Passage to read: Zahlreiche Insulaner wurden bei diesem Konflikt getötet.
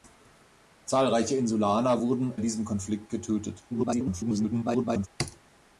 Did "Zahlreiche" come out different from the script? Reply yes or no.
no